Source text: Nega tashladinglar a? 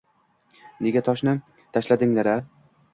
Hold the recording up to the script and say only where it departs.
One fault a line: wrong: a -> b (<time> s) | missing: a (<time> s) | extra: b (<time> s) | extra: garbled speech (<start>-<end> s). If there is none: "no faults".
extra: toshni (1.1 s)